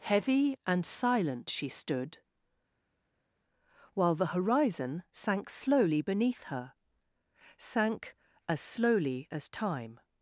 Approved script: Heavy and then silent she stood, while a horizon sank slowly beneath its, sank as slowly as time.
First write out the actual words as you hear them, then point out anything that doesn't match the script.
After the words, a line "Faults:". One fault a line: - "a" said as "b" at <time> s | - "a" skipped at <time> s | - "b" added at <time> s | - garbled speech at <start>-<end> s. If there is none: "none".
Heavy and silent she stood, while the horizon sank slowly beneath her, sank as slowly as time.
Faults:
- "then" skipped at 0.8 s
- "a" said as "the" at 4.1 s
- "its" said as "her" at 6.4 s